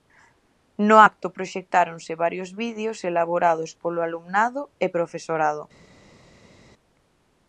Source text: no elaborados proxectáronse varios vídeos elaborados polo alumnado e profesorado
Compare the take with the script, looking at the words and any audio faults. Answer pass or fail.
fail